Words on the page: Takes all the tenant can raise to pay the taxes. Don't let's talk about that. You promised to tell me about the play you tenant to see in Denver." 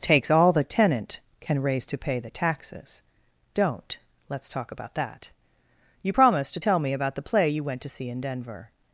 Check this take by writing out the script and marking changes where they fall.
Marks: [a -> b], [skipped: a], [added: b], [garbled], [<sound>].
Takes all the tenant can raise to pay the taxes. Don't let's talk about that. You promised to tell me about the play you [tenant -> went] to see in Denver."